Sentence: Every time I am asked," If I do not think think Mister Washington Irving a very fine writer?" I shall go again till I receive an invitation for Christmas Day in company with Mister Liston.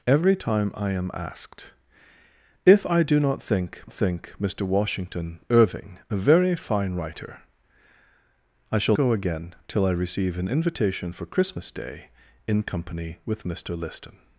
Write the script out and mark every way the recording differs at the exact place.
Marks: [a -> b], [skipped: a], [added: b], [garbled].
Every time I am asked," If I do not think think Mister Washington Irving a very fine writer?" I shall go again till I receive an invitation for Christmas Day in company with Mister Liston.